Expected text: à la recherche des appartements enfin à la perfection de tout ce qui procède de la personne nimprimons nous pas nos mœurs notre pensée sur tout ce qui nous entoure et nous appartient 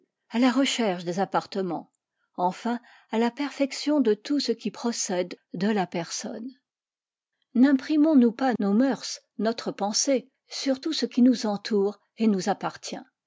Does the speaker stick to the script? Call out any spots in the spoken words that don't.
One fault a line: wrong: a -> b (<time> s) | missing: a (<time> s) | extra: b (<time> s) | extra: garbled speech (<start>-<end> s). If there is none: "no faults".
no faults